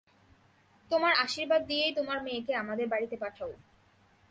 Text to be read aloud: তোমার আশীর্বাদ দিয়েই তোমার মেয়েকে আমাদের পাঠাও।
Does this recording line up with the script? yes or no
no